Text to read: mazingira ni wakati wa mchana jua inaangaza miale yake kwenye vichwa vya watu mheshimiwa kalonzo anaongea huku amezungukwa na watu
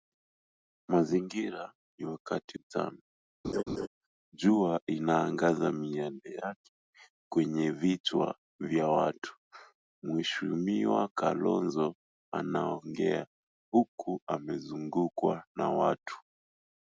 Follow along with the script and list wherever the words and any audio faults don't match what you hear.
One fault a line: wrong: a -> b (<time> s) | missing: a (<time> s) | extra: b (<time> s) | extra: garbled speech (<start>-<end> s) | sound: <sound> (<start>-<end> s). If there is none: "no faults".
missing: wa (2.6 s)
sound: laugh (3.4-3.9 s)